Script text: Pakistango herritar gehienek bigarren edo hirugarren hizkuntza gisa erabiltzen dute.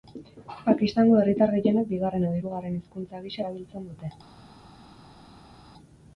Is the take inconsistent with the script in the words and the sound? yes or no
no